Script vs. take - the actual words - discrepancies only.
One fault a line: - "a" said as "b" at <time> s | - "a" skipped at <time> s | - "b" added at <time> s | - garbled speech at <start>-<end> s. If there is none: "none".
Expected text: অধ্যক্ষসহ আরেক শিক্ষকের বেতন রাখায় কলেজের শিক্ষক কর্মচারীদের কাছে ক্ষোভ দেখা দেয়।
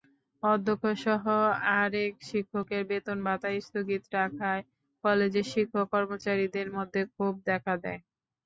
- "ভাতা স্থগিত" added at 3.2 s
- "কাছে" said as "মধ্যে" at 6.7 s